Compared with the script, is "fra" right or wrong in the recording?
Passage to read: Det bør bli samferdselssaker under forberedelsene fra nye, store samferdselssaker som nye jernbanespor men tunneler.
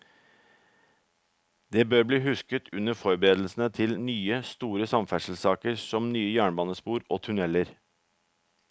wrong